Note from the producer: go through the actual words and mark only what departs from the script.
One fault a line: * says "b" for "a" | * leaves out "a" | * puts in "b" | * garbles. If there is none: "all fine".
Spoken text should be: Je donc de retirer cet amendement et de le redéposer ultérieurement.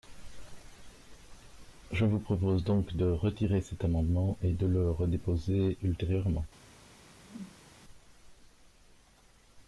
* puts in "vous propose"